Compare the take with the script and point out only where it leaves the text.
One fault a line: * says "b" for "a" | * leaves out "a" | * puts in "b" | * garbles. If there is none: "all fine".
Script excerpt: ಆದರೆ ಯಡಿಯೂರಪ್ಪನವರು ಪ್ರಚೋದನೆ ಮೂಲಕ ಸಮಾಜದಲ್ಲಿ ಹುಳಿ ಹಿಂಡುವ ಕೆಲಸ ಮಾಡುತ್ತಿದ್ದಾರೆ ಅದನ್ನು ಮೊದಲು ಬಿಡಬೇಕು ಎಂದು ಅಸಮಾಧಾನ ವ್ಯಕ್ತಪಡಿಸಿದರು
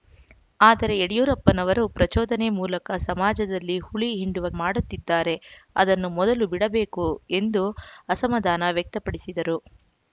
* leaves out "ಕೆಲಸ"